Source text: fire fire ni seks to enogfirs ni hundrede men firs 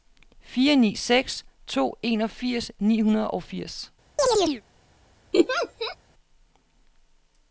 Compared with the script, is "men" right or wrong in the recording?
wrong